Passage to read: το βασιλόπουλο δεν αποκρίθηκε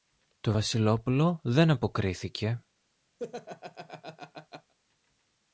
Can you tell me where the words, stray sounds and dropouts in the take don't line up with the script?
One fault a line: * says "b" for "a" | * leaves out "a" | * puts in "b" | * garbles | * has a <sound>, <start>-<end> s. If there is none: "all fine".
* has a laugh, 3.2-4.7 s